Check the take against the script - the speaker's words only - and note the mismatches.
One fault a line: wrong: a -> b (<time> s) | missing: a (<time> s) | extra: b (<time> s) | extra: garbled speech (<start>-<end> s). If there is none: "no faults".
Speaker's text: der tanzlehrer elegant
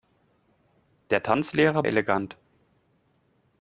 no faults